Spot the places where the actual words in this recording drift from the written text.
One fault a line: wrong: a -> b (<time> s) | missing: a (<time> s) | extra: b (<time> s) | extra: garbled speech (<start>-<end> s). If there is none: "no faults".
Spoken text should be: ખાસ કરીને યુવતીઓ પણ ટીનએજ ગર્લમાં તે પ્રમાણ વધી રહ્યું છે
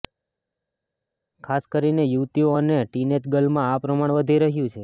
wrong: પણ -> અને (2.5 s)
wrong: તે -> આ (3.7 s)